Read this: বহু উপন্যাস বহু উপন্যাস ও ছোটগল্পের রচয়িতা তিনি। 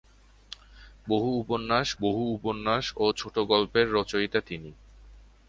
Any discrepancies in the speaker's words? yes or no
no